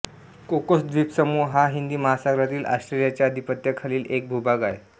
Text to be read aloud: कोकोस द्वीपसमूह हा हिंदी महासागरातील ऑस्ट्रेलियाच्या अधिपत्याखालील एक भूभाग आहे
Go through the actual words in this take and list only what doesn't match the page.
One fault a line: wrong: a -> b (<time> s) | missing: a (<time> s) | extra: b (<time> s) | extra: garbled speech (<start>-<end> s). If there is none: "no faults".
no faults